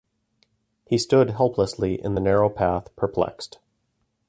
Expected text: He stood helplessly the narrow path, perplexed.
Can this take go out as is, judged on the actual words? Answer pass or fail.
fail